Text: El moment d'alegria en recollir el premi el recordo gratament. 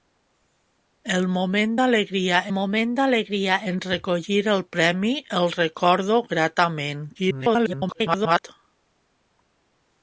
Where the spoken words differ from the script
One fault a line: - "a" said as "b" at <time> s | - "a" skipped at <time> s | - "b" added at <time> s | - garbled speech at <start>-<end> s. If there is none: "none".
- "moment d'alegria" added at 2.6 s
- garbled speech at 7.1-8.4 s